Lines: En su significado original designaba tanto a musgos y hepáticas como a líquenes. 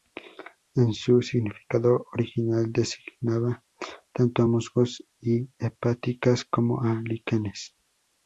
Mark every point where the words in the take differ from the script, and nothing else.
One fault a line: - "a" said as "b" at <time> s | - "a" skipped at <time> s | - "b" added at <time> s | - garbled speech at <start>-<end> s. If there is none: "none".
none